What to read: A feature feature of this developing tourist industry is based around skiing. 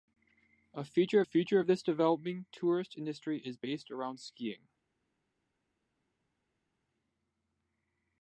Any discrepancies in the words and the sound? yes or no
no